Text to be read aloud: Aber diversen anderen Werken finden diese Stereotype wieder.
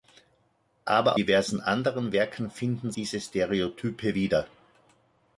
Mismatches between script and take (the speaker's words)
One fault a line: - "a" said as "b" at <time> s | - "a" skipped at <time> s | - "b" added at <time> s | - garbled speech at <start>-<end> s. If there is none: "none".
none